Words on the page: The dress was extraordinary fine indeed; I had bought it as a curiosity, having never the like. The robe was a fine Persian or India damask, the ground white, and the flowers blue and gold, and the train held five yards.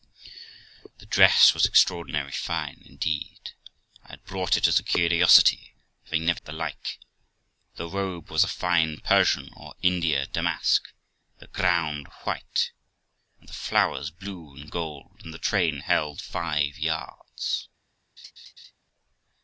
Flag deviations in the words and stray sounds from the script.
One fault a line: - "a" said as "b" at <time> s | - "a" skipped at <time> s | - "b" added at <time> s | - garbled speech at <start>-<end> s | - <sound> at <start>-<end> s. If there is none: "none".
- laugh at 18.2-18.7 s